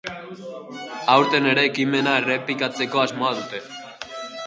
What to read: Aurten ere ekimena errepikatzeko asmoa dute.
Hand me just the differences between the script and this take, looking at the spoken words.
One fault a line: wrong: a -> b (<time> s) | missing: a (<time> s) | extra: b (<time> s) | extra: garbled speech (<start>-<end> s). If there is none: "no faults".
no faults